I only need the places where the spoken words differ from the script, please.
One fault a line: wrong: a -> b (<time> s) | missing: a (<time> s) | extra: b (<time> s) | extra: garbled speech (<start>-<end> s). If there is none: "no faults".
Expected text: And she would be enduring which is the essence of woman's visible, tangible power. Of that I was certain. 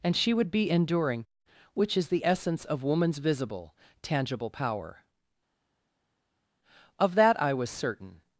no faults